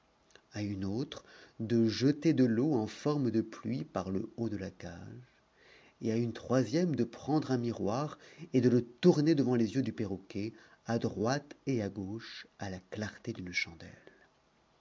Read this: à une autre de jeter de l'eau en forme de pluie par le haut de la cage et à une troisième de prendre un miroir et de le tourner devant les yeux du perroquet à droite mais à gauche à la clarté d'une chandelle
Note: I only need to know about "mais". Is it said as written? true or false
false